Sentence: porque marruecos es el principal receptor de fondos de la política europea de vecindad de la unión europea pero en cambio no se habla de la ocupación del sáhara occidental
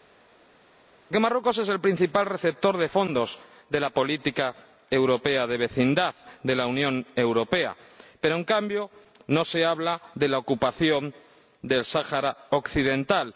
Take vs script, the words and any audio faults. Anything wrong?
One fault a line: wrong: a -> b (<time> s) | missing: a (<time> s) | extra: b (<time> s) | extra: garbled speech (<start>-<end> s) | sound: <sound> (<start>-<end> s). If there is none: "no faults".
no faults